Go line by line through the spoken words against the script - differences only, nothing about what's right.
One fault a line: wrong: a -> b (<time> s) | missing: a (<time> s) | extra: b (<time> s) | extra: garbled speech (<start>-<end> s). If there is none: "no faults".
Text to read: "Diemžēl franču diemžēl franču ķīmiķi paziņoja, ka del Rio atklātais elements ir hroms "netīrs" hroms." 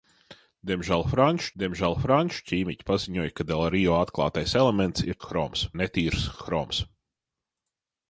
no faults